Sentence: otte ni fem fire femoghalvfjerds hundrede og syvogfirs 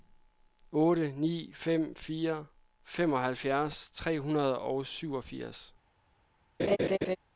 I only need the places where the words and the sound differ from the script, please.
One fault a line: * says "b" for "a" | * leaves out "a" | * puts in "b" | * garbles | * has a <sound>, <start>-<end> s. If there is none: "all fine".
* puts in "tre"
* has a laugh, 6.6-7.2 s